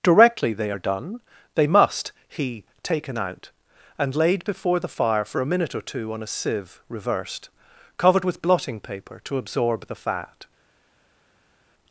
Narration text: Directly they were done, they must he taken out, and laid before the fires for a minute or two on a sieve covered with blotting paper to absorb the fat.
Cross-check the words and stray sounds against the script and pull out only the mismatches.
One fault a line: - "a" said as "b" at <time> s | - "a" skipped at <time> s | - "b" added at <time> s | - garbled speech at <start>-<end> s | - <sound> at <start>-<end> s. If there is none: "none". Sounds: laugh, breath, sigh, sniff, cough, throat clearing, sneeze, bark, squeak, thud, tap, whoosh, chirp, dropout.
- "were" said as "are" at 0.7 s
- "fires" said as "fire" at 4.9 s
- "reversed" added at 6.9 s